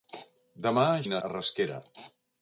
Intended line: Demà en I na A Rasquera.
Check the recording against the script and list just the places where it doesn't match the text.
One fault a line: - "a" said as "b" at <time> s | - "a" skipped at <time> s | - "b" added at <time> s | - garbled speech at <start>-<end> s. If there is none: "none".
none